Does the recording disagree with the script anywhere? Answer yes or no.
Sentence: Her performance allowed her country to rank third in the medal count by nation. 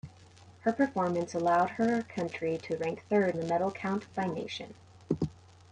yes